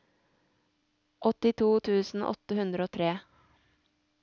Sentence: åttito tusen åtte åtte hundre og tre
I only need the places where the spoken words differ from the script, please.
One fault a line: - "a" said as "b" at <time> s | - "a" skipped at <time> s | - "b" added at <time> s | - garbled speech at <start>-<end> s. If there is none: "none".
- "åtte" skipped at 2.6 s